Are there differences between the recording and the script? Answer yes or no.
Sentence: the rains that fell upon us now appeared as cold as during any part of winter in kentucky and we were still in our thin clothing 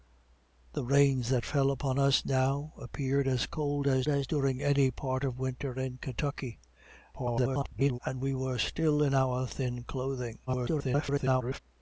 yes